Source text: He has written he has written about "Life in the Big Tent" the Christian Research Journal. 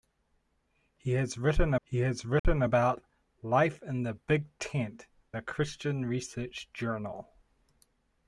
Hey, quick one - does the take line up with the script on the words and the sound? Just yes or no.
no